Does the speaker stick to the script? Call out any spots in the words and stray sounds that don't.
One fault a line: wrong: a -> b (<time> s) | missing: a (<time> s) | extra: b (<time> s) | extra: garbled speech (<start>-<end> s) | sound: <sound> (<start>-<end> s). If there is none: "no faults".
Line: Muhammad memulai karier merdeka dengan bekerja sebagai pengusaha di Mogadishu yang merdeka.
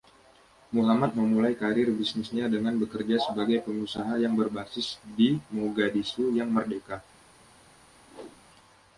wrong: merdeka -> bisnisnya (1.9 s)
extra: yang berbasis (4.2 s)
sound: whoosh (8.1-8.4 s)